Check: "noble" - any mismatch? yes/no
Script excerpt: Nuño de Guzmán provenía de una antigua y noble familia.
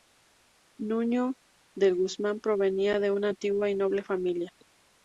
no